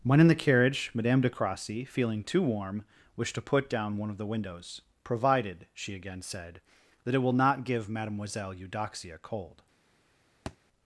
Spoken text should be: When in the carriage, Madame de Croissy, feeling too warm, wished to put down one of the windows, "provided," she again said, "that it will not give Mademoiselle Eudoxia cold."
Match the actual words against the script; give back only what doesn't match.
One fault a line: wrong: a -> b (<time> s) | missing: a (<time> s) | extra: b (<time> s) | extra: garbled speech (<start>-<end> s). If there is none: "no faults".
no faults